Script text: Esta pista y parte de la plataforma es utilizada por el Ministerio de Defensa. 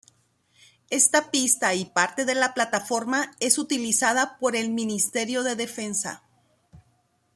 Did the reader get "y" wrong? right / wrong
right